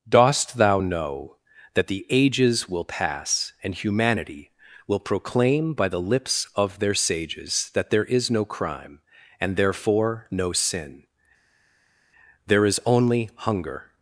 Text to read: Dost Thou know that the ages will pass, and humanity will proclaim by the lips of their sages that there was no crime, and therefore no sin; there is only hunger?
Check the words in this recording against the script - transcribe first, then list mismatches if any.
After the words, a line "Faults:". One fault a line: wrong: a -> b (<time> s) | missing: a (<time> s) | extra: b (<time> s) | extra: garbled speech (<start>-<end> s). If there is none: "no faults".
Dost Thou know that the ages will pass, and humanity will proclaim by the lips of their sages that there is no crime, and therefore no sin; there is only hunger?
Faults:
wrong: was -> is (8.1 s)